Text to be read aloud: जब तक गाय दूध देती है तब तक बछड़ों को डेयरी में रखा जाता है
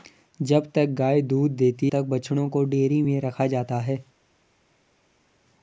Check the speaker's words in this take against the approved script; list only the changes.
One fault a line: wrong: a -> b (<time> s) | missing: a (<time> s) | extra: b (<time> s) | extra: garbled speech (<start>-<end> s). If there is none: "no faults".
missing: है तब (1.9 s)